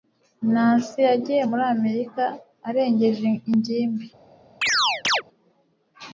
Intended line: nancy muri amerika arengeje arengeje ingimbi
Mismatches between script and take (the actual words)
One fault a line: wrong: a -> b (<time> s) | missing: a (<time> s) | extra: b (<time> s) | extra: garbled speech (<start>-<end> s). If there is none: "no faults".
extra: yagiye (1.1 s)
missing: arengeje (3.3 s)